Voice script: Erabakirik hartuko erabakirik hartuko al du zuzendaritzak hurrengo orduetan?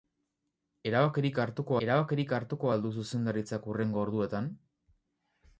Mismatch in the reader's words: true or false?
false